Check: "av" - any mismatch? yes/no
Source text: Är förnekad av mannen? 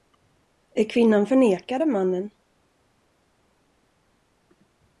no